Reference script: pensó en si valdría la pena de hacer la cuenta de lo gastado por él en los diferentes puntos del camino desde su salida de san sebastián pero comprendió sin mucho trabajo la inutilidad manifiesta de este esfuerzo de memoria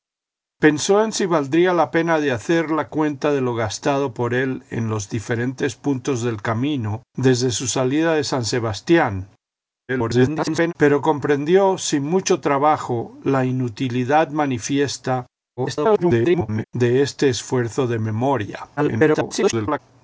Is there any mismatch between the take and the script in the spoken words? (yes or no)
yes